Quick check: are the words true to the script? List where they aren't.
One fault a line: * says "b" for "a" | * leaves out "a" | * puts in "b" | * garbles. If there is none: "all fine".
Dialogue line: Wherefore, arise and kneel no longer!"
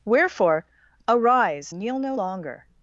* leaves out "and"